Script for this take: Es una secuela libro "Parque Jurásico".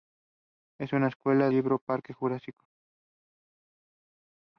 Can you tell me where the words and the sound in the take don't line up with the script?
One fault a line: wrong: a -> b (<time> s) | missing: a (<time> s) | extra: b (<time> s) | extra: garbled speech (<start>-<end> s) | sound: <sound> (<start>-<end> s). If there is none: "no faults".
no faults